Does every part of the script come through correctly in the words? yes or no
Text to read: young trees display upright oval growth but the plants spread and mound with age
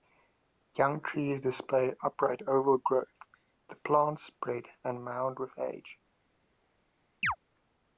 no